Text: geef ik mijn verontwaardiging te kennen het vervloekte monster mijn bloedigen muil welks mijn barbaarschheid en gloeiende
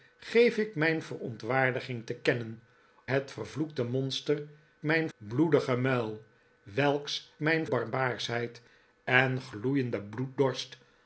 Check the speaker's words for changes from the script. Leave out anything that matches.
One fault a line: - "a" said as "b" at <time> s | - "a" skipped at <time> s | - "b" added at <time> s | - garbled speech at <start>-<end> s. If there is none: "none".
none